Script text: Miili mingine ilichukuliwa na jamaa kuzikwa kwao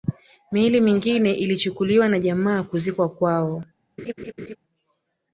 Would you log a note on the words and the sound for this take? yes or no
yes